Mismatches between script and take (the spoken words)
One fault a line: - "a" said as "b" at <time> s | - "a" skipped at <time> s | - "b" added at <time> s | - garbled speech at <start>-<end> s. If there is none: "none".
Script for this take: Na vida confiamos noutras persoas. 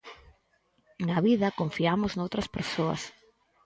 none